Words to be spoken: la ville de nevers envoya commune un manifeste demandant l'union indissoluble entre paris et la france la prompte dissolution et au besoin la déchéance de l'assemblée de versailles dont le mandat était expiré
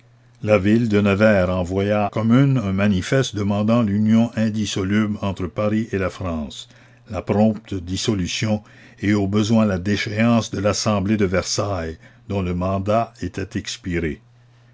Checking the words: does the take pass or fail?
pass